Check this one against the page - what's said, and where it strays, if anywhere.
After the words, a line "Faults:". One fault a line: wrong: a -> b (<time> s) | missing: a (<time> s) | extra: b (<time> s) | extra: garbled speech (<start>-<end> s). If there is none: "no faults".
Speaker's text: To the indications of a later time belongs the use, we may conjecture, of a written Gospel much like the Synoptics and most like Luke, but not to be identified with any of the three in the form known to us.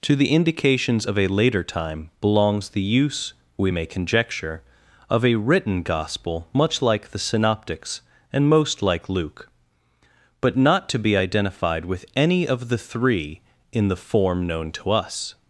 To the indications of a later time belongs the use, we may conjecture, of a written Gospel much like the Synoptics and most like Luke, but not to be identified with any of the three in the form known to us.
Faults:
no faults